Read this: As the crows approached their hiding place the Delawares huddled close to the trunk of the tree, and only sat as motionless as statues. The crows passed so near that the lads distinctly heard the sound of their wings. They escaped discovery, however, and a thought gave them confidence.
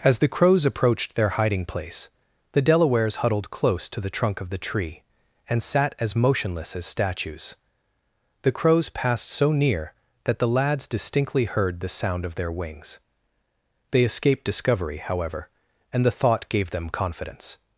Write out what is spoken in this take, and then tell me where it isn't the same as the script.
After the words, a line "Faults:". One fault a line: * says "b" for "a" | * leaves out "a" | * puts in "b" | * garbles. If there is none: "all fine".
As the crows approached their hiding place the Delawares huddled close to the trunk of the tree, and sat as motionless as statues. The crows passed so near that the lads distinctly heard the sound of their wings. They escaped discovery, however, and the thought gave them confidence.
Faults:
* leaves out "only"
* says "the" for "a"